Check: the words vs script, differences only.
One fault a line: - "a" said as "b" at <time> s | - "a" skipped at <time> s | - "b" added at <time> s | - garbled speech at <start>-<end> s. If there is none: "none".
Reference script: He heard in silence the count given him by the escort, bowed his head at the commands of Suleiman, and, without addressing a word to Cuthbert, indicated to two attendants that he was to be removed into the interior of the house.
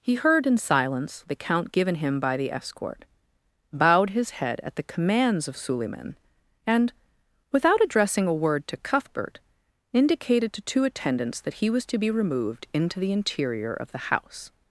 none